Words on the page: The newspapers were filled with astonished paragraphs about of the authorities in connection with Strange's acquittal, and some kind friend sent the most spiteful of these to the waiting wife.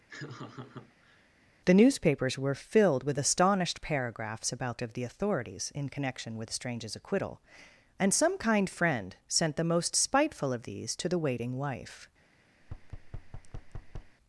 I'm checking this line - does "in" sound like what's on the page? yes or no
yes